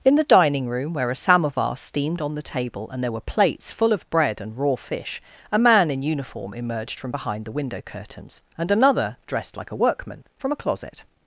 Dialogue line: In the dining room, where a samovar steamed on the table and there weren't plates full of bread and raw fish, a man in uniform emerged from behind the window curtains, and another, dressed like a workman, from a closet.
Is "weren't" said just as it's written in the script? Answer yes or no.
no